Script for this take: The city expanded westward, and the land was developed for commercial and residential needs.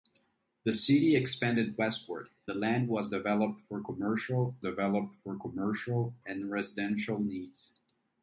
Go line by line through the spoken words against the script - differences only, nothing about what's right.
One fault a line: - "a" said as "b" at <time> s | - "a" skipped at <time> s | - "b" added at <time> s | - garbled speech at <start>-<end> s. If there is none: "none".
- "and" skipped at 2.3 s
- "developed for commercial" added at 4.6 s